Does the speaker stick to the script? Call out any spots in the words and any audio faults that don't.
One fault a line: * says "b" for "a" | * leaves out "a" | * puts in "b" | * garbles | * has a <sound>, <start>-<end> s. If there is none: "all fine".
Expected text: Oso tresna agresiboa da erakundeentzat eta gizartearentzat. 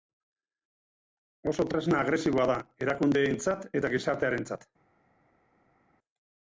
all fine